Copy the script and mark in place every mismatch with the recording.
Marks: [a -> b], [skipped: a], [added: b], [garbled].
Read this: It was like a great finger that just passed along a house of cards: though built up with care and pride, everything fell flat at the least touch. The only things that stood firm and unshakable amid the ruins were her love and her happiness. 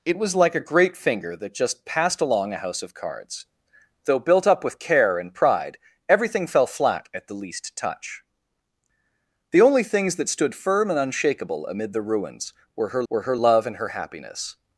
It was like a great finger that just passed along a house of cards: though built up with care and pride, everything fell flat at the least touch. The only things that stood firm and unshakable amid the ruins were her [added: were her] love and her happiness.